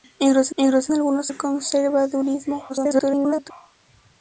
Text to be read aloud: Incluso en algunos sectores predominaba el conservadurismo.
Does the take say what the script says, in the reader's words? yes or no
no